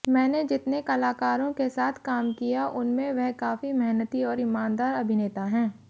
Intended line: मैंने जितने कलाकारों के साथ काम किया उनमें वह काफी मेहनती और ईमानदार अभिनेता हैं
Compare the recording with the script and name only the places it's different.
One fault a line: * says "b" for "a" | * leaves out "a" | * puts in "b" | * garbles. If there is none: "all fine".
all fine